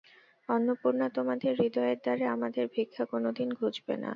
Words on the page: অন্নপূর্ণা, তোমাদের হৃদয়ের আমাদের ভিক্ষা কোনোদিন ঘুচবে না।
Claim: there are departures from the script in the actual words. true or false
true